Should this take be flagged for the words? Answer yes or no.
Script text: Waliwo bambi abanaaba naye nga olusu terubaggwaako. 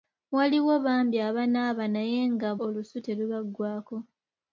no